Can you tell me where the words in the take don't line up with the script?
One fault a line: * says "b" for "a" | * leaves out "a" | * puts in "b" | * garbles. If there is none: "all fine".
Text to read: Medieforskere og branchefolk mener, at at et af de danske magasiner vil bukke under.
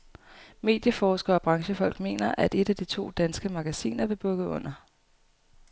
* leaves out "at"
* puts in "to"